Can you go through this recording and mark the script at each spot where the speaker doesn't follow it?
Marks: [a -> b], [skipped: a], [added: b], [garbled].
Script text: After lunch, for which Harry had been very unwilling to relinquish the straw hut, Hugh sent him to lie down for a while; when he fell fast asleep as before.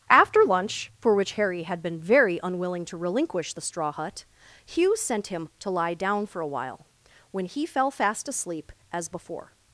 After lunch, for which Harry had been very unwilling to relinquish the straw hut, Hugh sent him to lie down for a while; when he fell fast asleep as before.